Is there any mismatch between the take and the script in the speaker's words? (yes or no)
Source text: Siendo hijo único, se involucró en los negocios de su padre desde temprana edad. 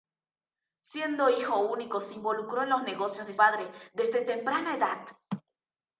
yes